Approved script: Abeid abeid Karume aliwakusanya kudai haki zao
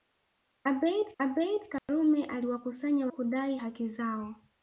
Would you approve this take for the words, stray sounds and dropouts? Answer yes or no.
no